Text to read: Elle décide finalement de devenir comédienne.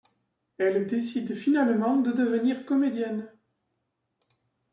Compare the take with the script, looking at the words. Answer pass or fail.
pass